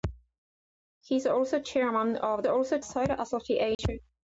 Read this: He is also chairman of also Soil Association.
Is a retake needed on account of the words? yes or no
no